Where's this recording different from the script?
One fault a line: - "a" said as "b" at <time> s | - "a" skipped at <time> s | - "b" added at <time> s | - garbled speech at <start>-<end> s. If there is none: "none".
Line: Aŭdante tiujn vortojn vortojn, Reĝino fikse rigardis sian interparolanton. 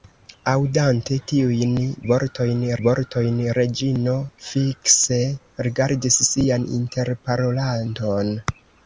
none